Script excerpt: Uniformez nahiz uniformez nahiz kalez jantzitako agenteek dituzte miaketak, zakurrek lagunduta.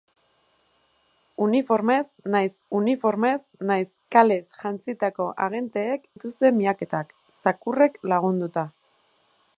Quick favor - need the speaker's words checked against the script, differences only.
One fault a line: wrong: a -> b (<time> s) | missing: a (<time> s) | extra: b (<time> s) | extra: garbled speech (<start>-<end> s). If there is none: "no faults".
no faults